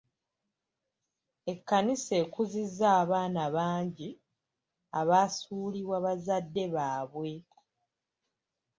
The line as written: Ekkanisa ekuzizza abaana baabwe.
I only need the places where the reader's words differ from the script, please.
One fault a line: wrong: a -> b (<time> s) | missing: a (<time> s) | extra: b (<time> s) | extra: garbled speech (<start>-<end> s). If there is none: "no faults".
extra: bangi abaasuulibwa bazadde (3.5 s)